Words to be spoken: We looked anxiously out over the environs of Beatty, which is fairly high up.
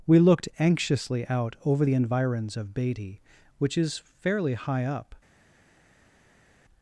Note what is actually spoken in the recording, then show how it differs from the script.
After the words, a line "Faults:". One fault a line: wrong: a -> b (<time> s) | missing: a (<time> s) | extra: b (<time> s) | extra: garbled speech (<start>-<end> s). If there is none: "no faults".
We looked anxiously out over the environs of Beatty, which is fairly high up.
Faults:
no faults